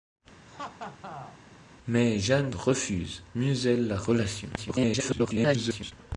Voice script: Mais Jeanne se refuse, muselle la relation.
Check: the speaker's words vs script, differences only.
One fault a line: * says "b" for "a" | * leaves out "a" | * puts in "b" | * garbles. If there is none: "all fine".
* leaves out "se"
* garbles